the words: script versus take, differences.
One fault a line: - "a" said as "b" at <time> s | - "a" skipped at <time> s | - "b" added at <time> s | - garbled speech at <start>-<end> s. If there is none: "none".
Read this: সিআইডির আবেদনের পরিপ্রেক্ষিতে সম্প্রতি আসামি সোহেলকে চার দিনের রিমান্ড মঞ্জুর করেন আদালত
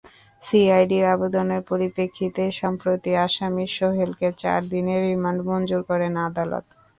none